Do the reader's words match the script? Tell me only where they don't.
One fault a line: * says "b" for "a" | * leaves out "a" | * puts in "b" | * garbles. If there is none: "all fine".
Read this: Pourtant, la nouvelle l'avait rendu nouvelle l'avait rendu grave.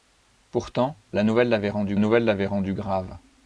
all fine